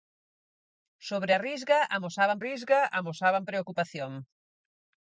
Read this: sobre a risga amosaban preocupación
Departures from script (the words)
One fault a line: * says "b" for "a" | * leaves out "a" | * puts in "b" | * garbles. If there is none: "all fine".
* puts in "risga amosaban"